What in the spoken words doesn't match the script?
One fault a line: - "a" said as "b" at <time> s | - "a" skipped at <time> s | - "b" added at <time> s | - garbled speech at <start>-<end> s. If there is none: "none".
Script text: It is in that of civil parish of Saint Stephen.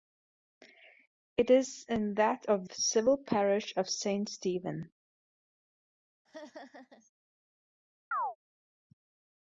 none